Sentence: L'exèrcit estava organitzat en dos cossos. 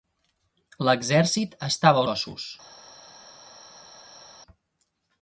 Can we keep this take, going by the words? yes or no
no